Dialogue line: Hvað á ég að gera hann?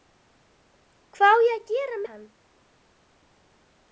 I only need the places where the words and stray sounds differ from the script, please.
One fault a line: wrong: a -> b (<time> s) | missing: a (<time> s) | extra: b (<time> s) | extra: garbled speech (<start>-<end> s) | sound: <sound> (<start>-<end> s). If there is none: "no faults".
no faults